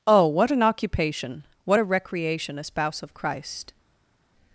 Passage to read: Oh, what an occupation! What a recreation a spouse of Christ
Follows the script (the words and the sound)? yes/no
yes